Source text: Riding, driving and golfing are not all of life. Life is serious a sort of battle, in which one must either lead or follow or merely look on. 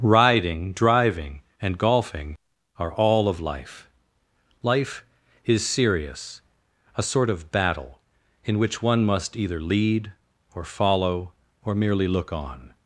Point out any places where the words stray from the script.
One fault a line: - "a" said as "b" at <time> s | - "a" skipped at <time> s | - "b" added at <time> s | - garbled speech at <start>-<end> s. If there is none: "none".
- "not" skipped at 2.9 s